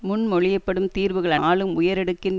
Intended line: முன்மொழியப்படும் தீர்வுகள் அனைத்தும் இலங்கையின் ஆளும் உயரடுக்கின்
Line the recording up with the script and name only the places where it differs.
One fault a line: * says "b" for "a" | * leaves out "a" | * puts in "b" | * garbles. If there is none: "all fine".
* leaves out "அனைத்தும் இலங்கையின்"